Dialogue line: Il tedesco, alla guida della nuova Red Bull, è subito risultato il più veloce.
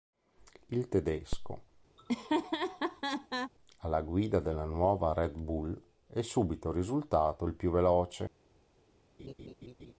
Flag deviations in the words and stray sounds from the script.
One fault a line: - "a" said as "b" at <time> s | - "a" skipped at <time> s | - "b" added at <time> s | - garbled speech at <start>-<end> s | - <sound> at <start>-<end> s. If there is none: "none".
- laugh at 2.0-3.5 s
- laugh at 9.2-9.9 s